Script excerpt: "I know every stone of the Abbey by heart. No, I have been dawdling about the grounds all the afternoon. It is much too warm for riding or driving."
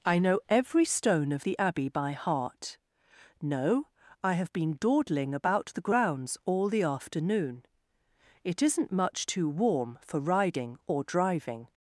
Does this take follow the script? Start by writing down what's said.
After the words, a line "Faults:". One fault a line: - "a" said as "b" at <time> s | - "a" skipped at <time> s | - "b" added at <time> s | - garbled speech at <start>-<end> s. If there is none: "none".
"I know every stone of the Abbey by heart. No, I have been dawdling about the grounds all the afternoon. It isn't much too warm for riding or driving."
Faults:
- "is" said as "isn't" at 8.6 s